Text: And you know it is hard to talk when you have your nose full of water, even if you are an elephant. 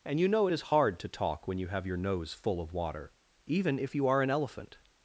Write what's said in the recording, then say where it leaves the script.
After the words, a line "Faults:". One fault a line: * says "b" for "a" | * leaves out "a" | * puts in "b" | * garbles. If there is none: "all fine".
And you know it is hard to talk when you have your nose full of water, even if you are an elephant.
Faults:
all fine